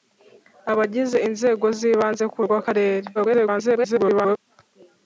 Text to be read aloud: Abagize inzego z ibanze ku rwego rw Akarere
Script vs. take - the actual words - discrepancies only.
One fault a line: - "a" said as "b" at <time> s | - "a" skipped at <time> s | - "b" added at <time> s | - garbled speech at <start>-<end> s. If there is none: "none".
- "rwego" skipped at 2.4 s
- garbled speech at 3.1-4.4 s